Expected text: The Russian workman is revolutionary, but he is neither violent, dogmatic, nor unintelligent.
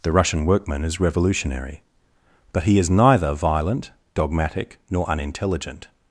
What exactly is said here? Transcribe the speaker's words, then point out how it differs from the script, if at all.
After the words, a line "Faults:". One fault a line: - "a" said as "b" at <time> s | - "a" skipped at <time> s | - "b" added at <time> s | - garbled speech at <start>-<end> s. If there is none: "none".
The Russian workman is revolutionary, but he is neither violent, dogmatic, nor unintelligent.
Faults:
none